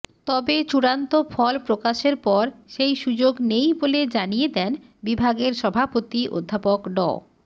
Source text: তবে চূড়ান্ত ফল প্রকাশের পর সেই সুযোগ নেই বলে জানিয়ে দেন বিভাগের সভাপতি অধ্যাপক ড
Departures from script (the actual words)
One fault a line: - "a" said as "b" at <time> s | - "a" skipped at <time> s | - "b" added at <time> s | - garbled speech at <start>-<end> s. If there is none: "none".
none